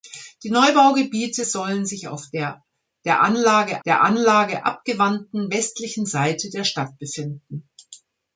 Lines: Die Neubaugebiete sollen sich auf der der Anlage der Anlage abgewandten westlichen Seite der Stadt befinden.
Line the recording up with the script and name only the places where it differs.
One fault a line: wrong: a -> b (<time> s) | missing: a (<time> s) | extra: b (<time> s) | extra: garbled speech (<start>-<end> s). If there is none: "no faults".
no faults